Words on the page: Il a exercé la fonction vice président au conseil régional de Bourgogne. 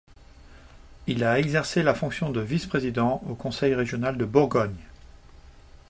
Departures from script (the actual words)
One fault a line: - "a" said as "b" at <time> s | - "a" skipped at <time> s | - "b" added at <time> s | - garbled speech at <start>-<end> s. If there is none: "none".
- "de" added at 2.3 s